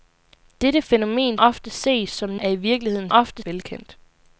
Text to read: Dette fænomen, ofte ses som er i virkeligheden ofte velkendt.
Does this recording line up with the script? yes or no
yes